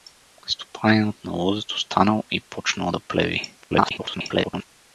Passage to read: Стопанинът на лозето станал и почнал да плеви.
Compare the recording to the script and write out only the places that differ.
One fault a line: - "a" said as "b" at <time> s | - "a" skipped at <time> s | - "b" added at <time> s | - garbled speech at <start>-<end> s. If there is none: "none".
- garbled speech at 3.6-4.6 s